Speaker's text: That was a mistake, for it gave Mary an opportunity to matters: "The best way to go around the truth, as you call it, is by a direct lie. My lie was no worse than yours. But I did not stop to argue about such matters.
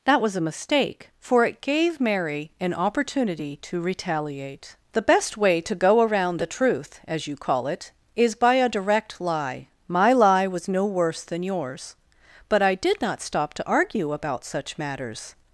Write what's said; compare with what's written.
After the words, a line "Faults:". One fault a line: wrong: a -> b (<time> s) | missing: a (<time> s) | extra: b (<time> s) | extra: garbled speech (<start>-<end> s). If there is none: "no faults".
That was a mistake, for it gave Mary an opportunity to retaliate: "The best way to go around the truth, as you call it, is by a direct lie. My lie was no worse than yours. But I did not stop to argue about such matters.
Faults:
wrong: matters -> retaliate (3.8 s)